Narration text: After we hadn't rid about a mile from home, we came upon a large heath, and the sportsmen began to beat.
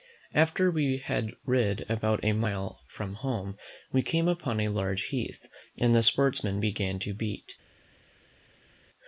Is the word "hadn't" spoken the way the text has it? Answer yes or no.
no